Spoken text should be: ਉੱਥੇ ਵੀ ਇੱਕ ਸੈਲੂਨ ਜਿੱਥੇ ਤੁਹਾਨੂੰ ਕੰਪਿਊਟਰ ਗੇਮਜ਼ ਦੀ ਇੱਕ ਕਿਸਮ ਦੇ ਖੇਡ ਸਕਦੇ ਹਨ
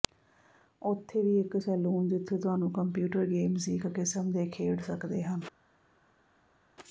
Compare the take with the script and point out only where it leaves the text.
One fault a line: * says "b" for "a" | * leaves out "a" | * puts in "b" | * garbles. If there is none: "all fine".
all fine